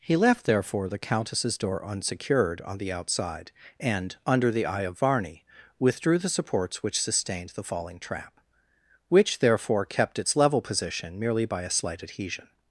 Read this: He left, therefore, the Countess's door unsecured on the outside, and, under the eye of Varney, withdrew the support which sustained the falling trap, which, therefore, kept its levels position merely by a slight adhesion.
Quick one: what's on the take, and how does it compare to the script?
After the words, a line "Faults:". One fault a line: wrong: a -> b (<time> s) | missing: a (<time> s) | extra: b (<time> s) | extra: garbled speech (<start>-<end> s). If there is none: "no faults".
He left, therefore, the Countess's door unsecured on the outside, and, under the eye of Varney, withdrew the supports which sustained the falling trap, which, therefore, kept its level position merely by a slight adhesion.
Faults:
wrong: support -> supports (6.3 s)
wrong: levels -> level (10.3 s)